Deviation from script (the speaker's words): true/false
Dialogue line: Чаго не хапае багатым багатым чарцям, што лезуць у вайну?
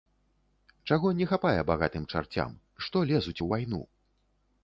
true